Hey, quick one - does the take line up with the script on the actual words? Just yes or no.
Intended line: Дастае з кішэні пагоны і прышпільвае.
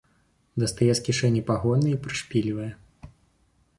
yes